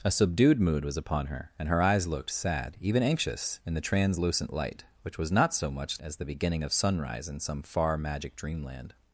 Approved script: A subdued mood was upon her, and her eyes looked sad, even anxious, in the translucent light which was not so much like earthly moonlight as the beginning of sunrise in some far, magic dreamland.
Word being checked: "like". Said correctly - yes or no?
no